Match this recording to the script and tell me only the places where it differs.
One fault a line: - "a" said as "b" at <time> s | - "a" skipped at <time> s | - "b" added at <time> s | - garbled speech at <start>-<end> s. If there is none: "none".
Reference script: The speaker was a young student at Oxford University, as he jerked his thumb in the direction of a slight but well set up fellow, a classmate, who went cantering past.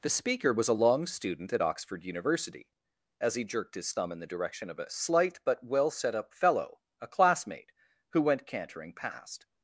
- "young" said as "long" at 0.7 s